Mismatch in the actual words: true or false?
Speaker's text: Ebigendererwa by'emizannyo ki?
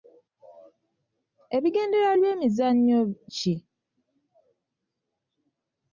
false